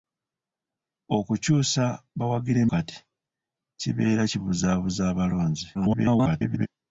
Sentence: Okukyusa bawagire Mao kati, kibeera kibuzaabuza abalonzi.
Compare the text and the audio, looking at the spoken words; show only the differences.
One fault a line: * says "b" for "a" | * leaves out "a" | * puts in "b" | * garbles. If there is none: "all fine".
* leaves out "Mao"
* garbles